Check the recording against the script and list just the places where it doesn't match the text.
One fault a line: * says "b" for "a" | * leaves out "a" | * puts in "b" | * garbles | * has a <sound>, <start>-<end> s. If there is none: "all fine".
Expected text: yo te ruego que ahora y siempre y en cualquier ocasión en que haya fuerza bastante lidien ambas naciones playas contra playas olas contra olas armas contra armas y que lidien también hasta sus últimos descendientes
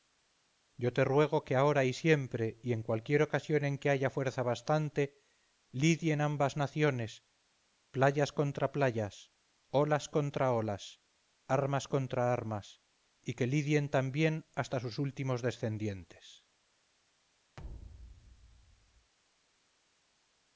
* has a thud, 17.6-19.1 s